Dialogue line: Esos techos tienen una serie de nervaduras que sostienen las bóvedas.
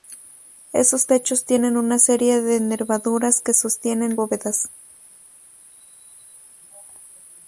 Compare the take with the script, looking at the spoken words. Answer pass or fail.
fail